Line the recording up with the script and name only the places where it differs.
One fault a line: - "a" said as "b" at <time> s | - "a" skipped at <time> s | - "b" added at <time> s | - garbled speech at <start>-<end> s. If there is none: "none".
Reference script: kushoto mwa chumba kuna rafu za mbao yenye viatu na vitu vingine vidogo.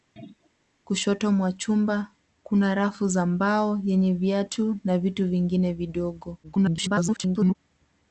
- garbled speech at 6.4-7.6 s